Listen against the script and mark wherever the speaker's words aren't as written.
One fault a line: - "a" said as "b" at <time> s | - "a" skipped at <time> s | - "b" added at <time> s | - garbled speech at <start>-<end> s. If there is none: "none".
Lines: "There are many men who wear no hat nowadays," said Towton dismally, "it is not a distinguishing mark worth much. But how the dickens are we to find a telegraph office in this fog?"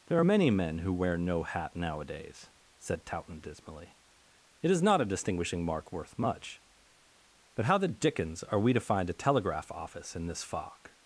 none